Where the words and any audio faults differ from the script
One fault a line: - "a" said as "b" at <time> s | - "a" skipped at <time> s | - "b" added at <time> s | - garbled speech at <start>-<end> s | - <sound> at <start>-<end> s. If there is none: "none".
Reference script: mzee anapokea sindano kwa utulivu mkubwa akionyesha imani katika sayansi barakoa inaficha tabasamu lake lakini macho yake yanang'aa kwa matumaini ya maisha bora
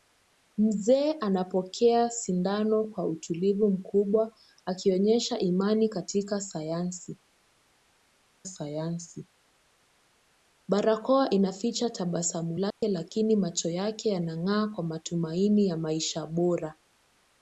- "sayansi" added at 8.5 s
- dropout at 12.7-12.8 s